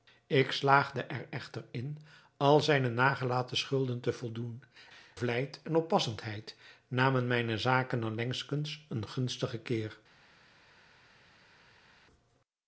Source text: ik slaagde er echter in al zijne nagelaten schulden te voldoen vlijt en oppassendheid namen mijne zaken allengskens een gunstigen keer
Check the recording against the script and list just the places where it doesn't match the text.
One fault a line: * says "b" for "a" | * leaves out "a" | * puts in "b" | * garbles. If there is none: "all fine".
all fine